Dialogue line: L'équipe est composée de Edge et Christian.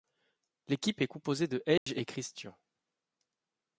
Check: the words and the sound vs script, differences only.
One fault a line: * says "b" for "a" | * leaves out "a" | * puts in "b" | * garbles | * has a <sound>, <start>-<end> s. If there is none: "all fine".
* has a dropout, 1.8-1.9 s